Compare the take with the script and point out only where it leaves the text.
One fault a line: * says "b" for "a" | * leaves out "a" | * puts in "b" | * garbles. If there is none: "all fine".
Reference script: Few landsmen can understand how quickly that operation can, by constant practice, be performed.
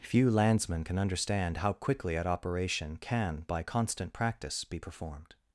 * says "at" for "that"